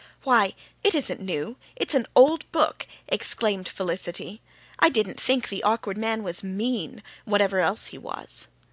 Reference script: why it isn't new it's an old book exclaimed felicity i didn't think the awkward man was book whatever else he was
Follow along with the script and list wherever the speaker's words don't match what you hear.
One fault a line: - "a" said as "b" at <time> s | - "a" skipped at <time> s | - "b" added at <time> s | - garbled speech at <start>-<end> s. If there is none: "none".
- "book" said as "mean" at 6.4 s